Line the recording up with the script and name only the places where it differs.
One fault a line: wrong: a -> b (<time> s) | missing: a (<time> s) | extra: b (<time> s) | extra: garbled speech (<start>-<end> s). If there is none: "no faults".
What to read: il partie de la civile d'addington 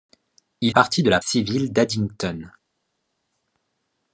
no faults